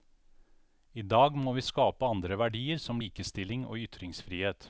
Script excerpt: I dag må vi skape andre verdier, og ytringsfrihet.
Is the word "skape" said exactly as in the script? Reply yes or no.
yes